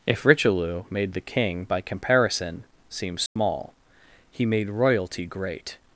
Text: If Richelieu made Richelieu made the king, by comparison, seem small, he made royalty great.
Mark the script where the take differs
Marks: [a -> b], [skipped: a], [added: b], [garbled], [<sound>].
If Richelieu made [skipped: Richelieu made] the king, by comparison, seem small, [dropout] he made royalty great.